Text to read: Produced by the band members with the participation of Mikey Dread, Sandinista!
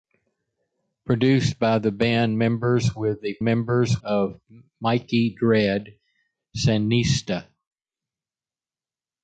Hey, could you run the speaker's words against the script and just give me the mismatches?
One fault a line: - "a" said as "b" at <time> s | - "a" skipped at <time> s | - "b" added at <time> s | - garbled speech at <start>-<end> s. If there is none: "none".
- "participation" said as "members" at 3.4 s